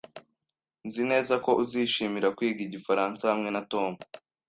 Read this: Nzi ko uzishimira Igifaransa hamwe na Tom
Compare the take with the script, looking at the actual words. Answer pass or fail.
fail